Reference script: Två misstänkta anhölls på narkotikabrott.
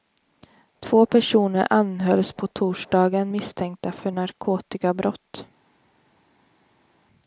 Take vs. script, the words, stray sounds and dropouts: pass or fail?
fail